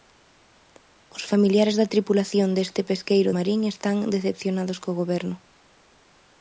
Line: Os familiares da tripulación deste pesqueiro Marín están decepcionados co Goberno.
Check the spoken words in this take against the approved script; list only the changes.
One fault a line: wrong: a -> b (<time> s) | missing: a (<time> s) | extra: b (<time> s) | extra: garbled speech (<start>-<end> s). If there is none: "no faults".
no faults